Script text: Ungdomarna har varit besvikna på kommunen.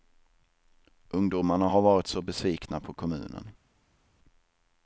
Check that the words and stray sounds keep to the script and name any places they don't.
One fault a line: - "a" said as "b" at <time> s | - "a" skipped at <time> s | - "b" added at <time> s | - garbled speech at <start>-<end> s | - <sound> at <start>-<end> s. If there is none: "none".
- "så" added at 2.1 s